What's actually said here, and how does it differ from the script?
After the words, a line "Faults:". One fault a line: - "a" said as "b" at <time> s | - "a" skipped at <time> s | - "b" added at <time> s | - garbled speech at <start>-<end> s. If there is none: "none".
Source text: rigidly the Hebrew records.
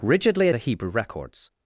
rigidly the Hebrew records.
Faults:
none